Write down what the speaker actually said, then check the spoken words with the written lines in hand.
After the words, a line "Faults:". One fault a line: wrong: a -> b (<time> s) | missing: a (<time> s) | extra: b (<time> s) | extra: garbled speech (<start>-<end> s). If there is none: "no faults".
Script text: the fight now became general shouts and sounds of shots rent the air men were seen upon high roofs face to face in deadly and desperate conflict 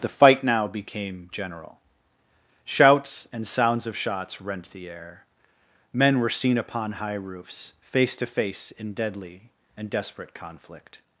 the fight now became general shouts and sounds of shots rent the air men were seen upon high roofs face to face in deadly and desperate conflict
Faults:
no faults